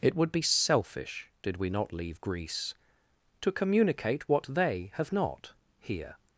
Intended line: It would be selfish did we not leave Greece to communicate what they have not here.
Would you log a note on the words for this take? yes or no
no